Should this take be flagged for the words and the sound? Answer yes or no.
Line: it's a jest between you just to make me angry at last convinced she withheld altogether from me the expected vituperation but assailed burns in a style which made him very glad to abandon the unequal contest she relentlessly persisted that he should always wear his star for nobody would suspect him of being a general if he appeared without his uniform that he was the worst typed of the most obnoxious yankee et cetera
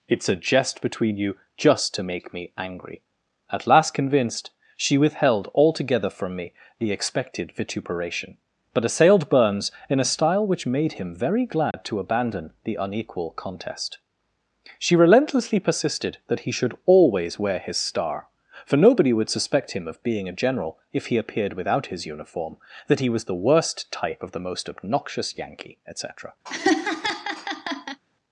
yes